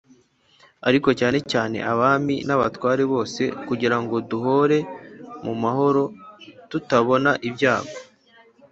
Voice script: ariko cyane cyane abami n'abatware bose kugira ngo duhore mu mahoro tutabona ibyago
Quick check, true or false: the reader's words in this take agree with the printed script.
true